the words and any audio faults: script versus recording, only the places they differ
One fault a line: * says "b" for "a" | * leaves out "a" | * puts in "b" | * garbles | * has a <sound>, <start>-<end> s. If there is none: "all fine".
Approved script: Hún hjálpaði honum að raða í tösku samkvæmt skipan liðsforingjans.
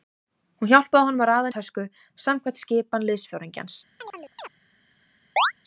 * has a chirp, 4.0-4.5 s
* has a chirp, 5.4-5.5 s